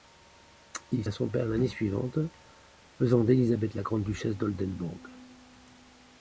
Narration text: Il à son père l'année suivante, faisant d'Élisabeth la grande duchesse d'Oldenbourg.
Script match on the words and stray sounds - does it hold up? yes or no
yes